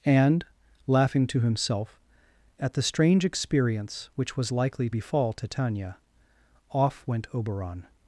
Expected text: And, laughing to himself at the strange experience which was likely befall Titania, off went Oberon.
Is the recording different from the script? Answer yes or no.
no